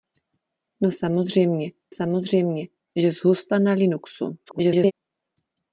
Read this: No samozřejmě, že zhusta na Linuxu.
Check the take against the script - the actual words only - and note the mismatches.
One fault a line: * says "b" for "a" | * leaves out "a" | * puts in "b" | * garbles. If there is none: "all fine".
* puts in "samozřejmě"
* garbles